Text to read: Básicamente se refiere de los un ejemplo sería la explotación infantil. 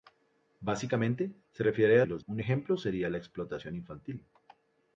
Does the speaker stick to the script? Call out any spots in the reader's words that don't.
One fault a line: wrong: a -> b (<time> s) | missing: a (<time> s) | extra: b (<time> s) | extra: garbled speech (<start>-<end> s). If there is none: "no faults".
no faults